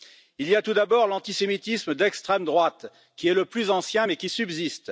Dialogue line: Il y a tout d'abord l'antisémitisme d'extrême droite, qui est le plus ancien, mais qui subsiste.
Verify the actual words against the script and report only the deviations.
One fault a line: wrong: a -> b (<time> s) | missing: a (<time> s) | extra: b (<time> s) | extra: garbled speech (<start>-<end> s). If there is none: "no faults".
no faults